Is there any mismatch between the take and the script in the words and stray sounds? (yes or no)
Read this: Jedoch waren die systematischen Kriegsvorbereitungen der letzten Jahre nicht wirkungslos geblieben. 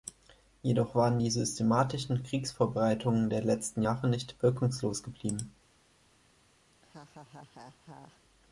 yes